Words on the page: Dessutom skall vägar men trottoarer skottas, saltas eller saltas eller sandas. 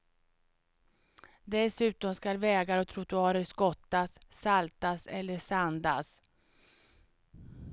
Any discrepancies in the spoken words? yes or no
yes